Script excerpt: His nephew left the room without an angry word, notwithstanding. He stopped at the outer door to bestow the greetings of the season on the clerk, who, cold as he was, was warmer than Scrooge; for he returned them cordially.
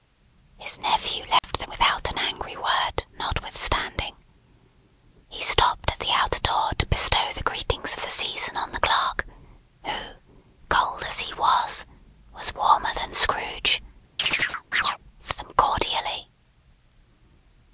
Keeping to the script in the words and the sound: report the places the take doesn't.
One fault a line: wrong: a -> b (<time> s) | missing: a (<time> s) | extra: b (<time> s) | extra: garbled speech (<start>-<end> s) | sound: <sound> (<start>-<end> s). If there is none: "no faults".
sound: dropout (1.4-1.4 s)
missing: room (1.7 s)
sound: chirp (14.2-15.0 s)
missing: he returned (15.3 s)